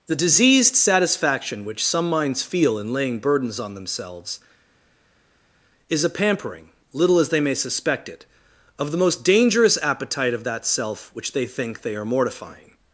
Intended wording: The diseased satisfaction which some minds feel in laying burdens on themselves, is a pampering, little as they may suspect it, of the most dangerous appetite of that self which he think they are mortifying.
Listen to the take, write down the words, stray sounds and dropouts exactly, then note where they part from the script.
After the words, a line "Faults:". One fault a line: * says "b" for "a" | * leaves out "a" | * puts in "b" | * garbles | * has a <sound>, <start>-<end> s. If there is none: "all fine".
The diseased satisfaction which some minds feel in laying burdens on themselves, is a pampering, little as they may suspect it, of the most dangerous appetite of that self which they think they are mortifying.
Faults:
* says "they" for "he"